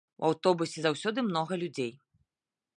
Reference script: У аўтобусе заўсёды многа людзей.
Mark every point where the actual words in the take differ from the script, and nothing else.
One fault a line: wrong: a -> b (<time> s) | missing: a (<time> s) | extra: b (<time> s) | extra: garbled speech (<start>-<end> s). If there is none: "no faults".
no faults